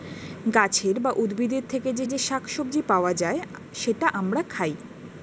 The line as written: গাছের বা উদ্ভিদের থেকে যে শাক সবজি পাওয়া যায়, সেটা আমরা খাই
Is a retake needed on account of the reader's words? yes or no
yes